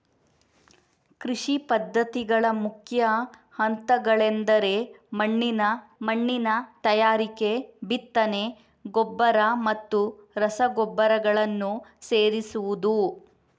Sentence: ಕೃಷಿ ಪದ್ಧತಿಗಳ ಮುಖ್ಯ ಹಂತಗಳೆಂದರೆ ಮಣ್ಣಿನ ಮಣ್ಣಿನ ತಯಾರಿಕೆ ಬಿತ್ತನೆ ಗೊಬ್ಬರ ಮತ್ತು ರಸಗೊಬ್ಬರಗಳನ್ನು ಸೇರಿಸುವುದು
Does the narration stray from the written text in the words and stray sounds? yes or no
no